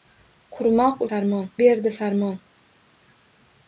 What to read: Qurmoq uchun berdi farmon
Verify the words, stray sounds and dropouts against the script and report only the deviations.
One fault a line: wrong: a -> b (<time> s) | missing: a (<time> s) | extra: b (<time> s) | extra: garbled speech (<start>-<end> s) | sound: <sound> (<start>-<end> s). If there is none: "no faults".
wrong: uchun -> farmon (1.1 s)